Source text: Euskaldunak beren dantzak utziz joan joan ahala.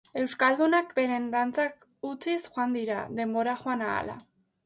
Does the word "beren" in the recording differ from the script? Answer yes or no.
no